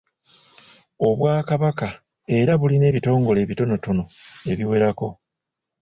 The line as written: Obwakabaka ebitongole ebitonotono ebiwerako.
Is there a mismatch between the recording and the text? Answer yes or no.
yes